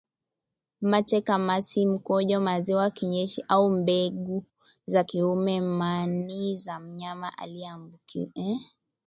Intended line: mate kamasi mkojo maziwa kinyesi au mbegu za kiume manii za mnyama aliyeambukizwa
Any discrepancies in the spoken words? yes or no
no